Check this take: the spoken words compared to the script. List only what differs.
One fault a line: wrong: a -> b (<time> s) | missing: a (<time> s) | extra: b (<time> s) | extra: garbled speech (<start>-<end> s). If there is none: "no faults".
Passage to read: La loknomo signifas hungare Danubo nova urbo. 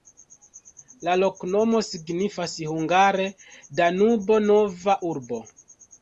no faults